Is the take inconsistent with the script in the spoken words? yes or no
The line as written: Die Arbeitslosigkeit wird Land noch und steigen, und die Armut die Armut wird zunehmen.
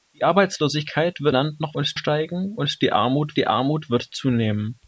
no